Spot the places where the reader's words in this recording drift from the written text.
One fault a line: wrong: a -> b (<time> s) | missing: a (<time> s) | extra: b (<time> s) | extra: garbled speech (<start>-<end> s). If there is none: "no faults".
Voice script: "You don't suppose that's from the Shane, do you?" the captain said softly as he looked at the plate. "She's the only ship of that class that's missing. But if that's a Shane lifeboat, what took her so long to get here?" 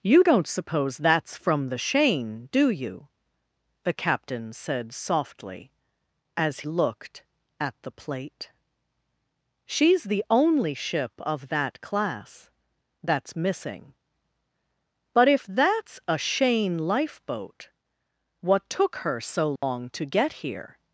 missing: he (6.6 s)